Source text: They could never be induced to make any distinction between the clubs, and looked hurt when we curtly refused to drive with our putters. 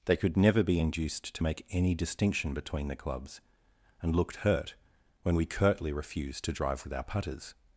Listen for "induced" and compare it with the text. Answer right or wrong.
right